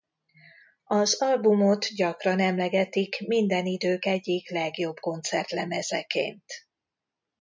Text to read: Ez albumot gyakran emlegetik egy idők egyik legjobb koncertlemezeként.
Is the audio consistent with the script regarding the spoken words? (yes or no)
no